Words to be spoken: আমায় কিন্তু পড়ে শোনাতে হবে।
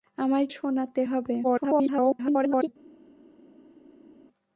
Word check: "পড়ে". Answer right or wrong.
wrong